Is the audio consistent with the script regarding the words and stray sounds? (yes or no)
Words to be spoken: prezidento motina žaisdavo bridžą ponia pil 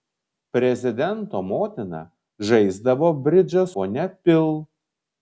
yes